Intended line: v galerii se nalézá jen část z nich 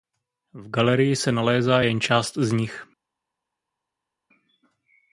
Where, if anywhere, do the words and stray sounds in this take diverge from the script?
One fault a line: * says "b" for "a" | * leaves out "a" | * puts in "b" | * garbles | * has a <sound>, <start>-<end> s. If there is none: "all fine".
all fine